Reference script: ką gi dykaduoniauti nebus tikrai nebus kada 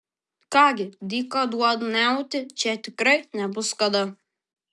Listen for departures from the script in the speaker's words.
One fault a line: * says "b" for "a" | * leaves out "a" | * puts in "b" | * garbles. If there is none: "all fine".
* says "čia" for "nebus"